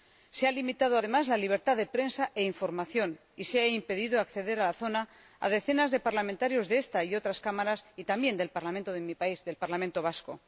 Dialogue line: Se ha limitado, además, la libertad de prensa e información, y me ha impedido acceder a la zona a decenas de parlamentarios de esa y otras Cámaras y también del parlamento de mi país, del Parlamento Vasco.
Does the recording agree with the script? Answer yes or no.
no